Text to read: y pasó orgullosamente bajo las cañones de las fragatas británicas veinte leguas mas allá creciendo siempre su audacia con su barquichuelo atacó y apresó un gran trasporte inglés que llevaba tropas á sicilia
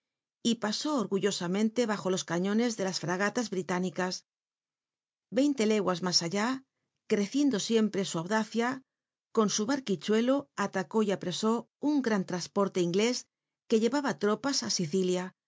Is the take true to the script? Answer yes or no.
no